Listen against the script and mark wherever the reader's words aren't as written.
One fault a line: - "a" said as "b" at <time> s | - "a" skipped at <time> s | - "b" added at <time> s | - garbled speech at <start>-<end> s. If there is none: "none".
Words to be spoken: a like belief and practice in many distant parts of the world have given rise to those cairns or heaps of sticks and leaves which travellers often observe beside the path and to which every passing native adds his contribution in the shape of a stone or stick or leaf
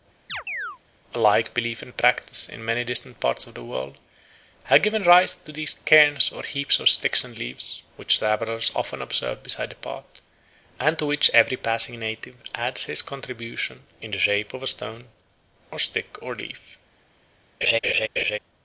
none